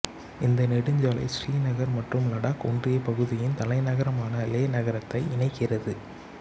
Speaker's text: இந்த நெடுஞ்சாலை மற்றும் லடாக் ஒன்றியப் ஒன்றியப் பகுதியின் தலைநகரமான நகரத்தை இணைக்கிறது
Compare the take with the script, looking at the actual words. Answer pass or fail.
fail